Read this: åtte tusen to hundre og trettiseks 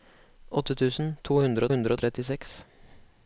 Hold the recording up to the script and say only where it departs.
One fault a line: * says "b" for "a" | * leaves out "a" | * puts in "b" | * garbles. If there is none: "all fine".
* puts in "hundre"